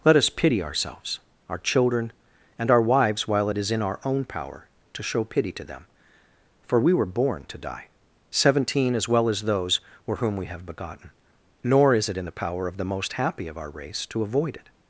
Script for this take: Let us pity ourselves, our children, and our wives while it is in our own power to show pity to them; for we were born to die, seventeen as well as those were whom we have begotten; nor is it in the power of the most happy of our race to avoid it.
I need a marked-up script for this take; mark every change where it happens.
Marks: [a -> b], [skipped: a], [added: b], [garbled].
Let us pity ourselves, our children, and our wives while it is in our own power to show pity to them; for we were born to die, seventeen as well as those were whom we have begotten; nor is it in the power of the most happy of our race to avoid it.